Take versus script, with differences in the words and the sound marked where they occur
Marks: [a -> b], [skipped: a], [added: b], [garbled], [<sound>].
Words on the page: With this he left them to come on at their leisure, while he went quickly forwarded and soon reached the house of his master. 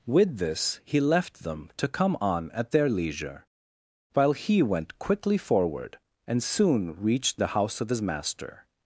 With this he left them to come on at their leisure, while he went quickly [forwarded -> forward] and soon reached the house of his master.